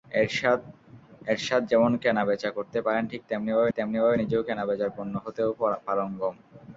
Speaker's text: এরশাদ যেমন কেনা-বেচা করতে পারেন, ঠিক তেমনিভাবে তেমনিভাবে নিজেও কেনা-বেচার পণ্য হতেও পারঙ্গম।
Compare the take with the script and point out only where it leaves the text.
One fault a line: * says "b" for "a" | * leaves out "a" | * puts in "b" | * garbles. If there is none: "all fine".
all fine